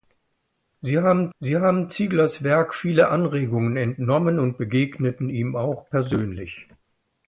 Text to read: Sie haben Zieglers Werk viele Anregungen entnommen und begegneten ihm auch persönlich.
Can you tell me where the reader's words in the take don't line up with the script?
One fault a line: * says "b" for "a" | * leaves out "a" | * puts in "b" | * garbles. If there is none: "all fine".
* puts in "sie haben"